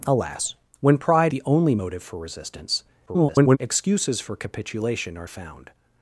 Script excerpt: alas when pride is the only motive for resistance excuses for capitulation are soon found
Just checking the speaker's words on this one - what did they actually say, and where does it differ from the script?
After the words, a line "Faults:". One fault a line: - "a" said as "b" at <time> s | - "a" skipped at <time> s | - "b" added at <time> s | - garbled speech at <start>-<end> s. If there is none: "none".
alas when pride the only motive for resistance [garbled] excuses for capitulation are found
Faults:
- "is" skipped at 1.3 s
- garbled speech at 3.1-3.6 s
- "soon" skipped at 5.3 s